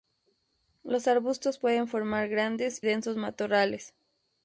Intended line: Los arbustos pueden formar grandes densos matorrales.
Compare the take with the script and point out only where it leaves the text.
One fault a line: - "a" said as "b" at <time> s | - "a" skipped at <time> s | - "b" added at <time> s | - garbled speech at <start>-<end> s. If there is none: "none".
none